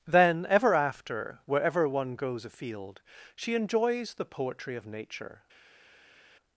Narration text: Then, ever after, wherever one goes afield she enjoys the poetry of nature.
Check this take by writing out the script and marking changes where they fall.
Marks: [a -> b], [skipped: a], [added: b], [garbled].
Then, ever after, wherever one goes afield she enjoys the poetry of nature.